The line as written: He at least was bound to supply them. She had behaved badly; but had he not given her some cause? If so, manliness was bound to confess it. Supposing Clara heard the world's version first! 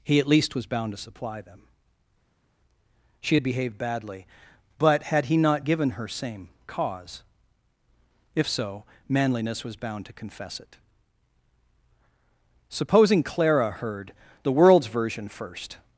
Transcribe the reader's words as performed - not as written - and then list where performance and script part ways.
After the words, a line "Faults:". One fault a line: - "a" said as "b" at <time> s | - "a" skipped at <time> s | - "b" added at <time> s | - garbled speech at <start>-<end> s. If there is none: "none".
He at least was bound to supply them. She had behaved badly; but had he not given her same cause? If so, manliness was bound to confess it. Supposing Clara heard the world's version first!
Faults:
- "some" said as "same" at 6.1 s